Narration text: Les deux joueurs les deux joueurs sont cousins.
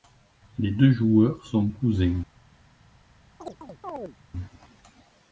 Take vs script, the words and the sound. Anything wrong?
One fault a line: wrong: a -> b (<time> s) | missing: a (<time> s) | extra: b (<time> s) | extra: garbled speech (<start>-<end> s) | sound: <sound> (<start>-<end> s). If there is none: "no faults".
missing: les deux joueurs (1.4 s)
sound: chirp (3.4-4.2 s)